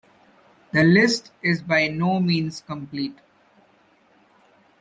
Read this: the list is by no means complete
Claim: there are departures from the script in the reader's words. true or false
false